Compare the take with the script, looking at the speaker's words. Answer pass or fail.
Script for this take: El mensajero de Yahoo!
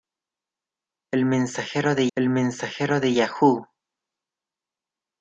fail